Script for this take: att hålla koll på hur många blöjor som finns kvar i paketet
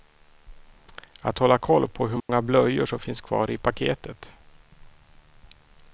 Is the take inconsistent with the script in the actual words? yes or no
no